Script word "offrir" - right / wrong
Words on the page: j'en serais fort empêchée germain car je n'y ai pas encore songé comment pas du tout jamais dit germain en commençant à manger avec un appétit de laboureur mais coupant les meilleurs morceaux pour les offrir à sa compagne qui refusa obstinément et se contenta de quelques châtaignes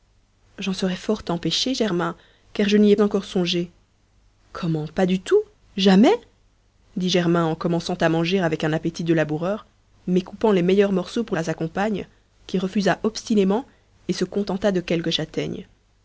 wrong